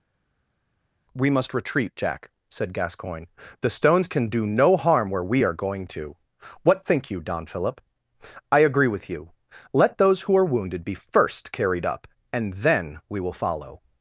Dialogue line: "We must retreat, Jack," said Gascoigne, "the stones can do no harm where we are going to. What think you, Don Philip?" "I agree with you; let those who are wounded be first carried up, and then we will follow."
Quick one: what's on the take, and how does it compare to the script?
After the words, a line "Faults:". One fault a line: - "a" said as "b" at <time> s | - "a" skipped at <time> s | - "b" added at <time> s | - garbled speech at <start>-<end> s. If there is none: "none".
"We must retreat, Jack," said Gascoigne, "the stones can do no harm where we are going to. What think you, Don Philip?" "I agree with you; let those who are wounded be first carried up, and then we will follow."
Faults:
none